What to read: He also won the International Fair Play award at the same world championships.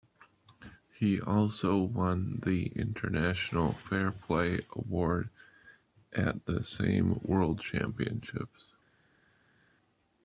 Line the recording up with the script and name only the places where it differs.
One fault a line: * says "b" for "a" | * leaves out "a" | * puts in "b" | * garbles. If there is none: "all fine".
all fine